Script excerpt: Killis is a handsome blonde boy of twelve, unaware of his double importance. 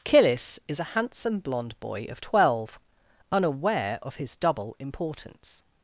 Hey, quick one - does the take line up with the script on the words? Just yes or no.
yes